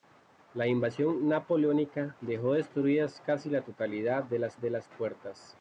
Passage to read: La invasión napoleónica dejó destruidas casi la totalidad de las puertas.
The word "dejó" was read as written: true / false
true